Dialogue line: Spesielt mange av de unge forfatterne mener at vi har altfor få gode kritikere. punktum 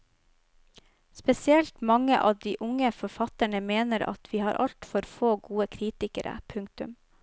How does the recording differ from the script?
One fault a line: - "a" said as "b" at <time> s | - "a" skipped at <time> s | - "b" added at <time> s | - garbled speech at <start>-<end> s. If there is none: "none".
none